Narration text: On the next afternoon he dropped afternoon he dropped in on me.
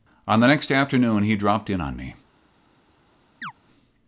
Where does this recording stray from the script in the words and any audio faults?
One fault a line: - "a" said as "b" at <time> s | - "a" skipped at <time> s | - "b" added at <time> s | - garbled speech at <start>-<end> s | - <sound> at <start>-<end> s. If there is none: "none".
- "afternoon he dropped" skipped at 1.7 s
- chirp at 3.4-3.5 s